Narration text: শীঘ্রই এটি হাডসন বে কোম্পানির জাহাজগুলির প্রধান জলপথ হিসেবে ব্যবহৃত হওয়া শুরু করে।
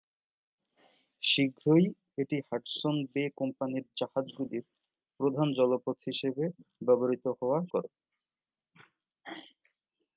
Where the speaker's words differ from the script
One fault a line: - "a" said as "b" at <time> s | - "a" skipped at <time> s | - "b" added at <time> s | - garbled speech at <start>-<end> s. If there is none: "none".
- "শুরু" skipped at 7.6 s